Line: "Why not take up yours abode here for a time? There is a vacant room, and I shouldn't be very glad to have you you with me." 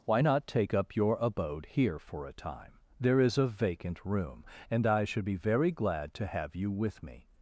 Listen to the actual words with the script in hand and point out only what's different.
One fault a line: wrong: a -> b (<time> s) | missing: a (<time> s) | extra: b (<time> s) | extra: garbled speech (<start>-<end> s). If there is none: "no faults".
wrong: yours -> your (1.0 s)
wrong: shouldn't -> should (5.0 s)
missing: you (6.7 s)